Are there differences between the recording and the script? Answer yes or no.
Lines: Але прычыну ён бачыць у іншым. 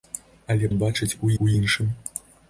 yes